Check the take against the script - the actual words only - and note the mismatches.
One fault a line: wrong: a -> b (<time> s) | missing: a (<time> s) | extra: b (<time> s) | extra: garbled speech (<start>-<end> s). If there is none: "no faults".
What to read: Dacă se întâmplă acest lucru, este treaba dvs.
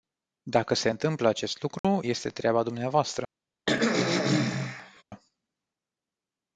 no faults